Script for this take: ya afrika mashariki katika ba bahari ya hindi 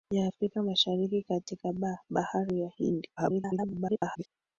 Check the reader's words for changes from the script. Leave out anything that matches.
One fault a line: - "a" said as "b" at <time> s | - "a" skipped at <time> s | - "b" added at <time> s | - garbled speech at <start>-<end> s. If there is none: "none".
- garbled speech at 3.2-4.3 s